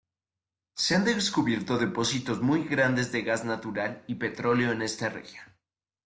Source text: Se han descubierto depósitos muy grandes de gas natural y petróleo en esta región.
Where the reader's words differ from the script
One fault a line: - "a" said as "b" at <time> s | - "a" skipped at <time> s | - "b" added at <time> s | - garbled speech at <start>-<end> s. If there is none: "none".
none